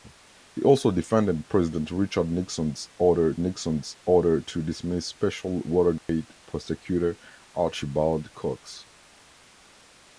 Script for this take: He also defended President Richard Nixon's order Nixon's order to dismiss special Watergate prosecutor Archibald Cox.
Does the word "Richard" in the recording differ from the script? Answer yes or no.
no